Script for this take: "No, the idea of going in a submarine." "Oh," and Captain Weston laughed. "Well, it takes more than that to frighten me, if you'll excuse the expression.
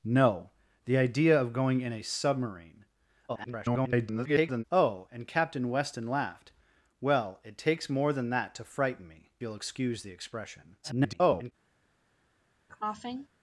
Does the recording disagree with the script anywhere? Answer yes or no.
yes